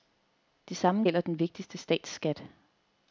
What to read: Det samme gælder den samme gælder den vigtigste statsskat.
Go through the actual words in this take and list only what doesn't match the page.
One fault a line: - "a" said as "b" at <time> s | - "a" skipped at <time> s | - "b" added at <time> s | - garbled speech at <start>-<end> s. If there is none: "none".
- "samme gælder den" skipped at 1.4 s